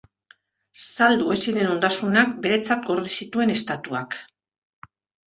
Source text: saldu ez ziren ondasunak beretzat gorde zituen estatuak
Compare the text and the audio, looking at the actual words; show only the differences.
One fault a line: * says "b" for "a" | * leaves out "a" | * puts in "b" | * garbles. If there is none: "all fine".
all fine